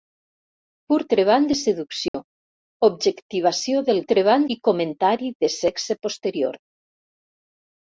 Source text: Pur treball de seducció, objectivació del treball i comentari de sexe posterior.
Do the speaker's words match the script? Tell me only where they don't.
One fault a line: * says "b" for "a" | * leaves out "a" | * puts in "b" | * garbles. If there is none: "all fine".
all fine